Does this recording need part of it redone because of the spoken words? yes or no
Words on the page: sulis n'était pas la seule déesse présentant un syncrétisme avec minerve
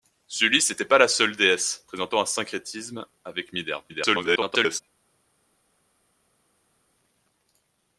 yes